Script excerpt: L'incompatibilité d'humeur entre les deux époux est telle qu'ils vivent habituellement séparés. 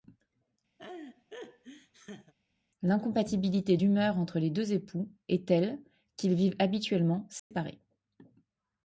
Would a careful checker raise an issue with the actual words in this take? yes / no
no